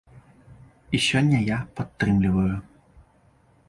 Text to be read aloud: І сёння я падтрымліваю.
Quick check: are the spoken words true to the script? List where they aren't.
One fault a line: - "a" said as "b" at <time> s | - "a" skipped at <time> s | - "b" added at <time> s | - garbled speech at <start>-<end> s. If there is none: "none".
none